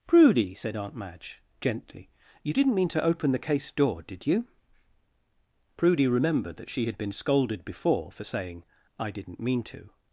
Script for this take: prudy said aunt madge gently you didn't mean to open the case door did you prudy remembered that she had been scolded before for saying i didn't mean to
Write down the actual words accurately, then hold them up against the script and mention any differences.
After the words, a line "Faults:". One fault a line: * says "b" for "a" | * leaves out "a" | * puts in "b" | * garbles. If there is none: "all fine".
prudy said aunt madge gently you didn't mean to open the case door did you prudy remembered that she had been scolded before for saying i didn't mean to
Faults:
all fine